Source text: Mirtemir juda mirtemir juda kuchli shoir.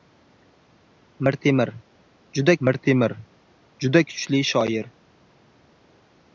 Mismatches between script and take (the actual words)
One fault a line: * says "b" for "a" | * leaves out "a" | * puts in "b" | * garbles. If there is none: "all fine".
all fine